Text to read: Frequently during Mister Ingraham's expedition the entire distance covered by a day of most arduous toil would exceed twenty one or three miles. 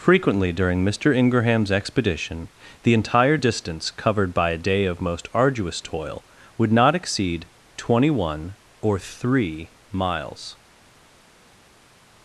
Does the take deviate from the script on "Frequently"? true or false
false